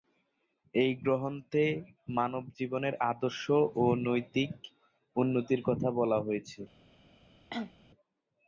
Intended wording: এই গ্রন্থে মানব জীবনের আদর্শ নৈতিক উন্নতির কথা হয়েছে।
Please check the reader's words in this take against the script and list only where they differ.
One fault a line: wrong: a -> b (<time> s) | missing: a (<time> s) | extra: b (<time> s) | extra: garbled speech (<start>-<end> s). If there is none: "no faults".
extra: ও (3.8 s)
extra: বলা (6.0 s)